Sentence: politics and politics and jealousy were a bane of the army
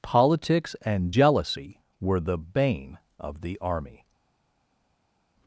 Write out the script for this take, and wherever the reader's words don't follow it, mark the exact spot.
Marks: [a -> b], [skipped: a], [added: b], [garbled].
politics and [skipped: politics and] jealousy were [a -> the] bane of the army